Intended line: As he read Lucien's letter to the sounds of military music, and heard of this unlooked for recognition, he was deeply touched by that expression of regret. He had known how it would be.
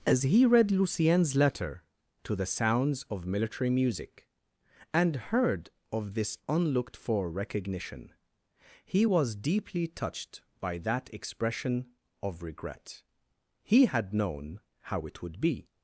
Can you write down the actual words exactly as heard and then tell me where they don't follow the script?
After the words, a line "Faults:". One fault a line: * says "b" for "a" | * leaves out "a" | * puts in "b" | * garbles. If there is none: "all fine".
As he read Lucien's letter to the sounds of military music, and heard of this unlooked for recognition, he was deeply touched by that expression of regret. He had known how it would be.
Faults:
all fine